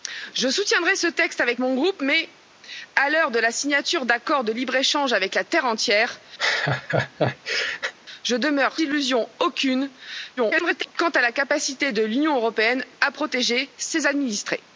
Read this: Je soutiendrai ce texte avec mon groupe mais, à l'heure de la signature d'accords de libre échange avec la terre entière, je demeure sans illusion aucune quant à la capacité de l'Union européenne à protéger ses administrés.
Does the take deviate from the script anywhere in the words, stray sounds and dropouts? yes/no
yes